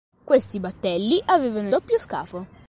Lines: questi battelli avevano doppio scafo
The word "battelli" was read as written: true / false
true